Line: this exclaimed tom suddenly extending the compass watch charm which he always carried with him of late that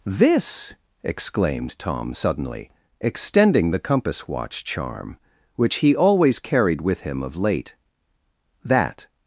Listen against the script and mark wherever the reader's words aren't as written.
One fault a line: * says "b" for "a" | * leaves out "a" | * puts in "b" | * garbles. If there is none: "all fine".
all fine